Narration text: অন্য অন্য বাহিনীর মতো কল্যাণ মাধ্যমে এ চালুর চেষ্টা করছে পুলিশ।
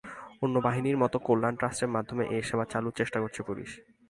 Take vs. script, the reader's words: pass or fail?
fail